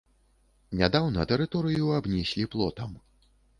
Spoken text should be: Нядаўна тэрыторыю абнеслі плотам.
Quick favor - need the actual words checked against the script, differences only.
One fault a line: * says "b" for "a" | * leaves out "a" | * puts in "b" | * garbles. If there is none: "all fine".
all fine